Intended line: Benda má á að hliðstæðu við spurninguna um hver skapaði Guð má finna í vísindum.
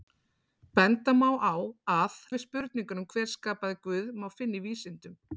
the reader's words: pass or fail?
fail